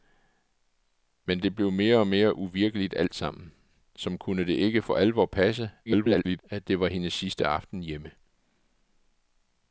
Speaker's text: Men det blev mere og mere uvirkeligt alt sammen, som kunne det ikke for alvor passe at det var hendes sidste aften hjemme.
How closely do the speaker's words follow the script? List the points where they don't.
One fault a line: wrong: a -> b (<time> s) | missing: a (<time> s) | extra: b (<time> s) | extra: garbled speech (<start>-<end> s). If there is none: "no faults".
extra: garbled speech (5.9-6.4 s)